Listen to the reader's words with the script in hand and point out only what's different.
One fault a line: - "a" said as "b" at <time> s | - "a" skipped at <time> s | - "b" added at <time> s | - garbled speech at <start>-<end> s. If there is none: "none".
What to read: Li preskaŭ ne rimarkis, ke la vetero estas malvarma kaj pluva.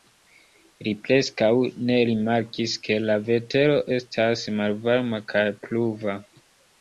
none